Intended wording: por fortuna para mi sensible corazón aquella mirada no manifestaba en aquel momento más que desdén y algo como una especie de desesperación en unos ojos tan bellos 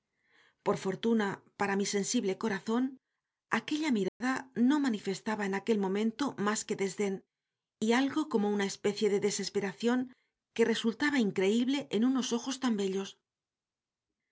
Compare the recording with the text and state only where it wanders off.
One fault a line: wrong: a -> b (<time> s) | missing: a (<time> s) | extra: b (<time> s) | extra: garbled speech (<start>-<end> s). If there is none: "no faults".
extra: que resultaba increíble (10.6 s)